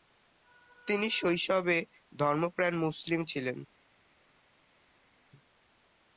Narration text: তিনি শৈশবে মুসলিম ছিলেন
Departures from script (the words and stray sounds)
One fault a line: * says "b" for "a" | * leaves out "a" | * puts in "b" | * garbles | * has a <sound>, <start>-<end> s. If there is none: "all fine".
* puts in "ধর্মপ্রাণ"